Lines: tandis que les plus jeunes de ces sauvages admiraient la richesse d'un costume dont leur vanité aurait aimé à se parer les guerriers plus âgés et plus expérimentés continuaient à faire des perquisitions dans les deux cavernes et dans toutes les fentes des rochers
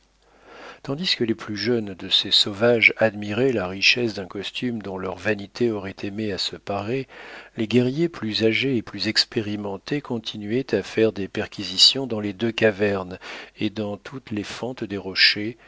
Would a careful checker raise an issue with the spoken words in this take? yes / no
no